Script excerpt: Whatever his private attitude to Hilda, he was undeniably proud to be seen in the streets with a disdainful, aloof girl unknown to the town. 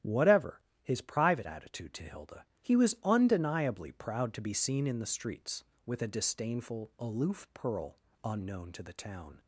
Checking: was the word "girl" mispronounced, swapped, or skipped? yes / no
yes